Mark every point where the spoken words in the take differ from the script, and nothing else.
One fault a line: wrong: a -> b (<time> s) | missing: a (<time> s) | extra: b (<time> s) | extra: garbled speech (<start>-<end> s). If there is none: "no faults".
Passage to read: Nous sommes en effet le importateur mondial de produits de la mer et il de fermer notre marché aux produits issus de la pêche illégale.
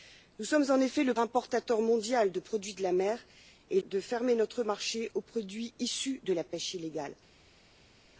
no faults